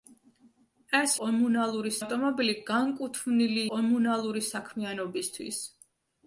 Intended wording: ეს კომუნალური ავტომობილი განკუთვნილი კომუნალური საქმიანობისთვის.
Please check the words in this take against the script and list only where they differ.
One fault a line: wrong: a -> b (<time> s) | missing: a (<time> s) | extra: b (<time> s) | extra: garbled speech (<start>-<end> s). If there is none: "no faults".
no faults